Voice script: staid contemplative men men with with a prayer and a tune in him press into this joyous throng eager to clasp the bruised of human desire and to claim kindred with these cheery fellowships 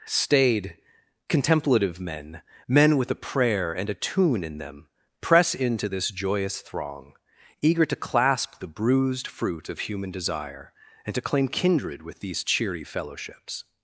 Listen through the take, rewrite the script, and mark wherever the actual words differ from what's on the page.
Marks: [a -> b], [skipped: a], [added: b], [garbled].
staid contemplative men men with [skipped: with] a prayer and a tune in [him -> them] press into this joyous throng eager to clasp the bruised [added: fruit] of human desire and to claim kindred with these cheery fellowships